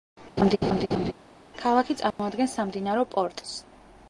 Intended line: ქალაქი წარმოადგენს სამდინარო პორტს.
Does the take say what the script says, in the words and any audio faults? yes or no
no